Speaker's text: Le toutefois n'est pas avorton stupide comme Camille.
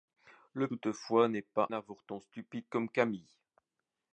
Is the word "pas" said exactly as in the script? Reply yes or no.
yes